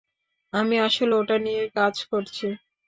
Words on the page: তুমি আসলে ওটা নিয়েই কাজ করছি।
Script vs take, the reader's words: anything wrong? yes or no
yes